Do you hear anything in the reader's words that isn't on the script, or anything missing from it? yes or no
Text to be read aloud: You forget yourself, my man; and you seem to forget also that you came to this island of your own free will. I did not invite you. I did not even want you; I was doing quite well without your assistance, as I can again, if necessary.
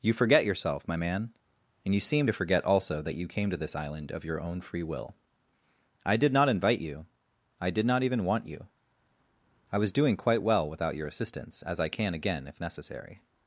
no